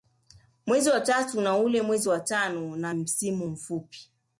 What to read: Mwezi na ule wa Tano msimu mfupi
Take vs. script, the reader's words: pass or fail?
fail